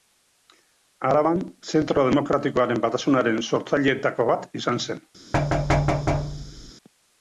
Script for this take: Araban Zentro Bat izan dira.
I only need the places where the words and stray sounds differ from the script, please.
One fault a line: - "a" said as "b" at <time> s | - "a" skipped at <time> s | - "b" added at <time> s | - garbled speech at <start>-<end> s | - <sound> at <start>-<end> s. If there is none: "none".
- "Demokratikoaren Batasunaren sortzaileetako" added at 2.1 s
- "dira" said as "zen" at 4.9 s
- thud at 5.3-6.7 s